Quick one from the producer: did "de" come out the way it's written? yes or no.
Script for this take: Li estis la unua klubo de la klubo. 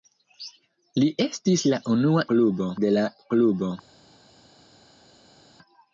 yes